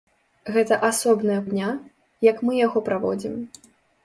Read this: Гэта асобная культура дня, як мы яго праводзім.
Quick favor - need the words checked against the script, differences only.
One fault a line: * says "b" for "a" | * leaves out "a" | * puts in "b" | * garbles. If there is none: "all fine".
* leaves out "культура"